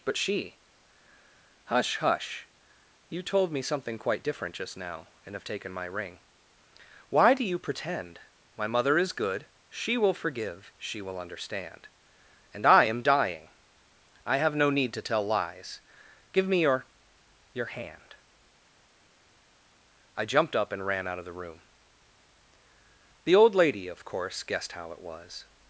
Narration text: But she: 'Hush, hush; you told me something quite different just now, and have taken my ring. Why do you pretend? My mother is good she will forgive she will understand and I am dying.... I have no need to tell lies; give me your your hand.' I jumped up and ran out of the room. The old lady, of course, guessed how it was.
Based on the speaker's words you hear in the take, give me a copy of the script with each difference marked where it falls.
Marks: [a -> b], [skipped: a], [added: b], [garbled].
But she: 'Hush, hush; you told me something quite different just now, and have taken my ring. Why do you pretend? My mother is good she will forgive she will understand and I am dying.... I have no need to tell lies; give me your your hand.' I jumped up and ran out of the room. The old lady, of course, guessed how it was.